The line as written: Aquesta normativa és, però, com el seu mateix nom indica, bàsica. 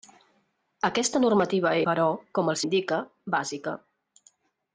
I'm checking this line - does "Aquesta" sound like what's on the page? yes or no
yes